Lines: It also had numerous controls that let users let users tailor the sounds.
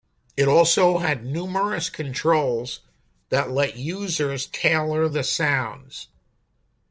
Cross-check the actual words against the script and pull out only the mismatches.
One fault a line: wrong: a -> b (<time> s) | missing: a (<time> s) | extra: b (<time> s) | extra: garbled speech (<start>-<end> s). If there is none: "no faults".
missing: let users (4.5 s)